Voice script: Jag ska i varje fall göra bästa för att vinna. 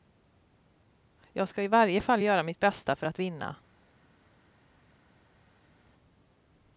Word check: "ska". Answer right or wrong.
right